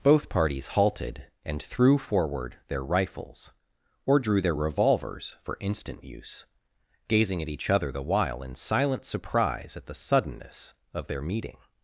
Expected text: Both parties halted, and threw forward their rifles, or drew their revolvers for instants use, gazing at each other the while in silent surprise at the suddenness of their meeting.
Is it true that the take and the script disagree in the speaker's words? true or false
true